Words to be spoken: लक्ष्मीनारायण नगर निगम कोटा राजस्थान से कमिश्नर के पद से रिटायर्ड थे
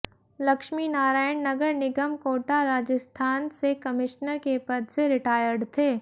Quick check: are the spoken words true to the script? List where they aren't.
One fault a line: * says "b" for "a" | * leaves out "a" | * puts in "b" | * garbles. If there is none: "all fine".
all fine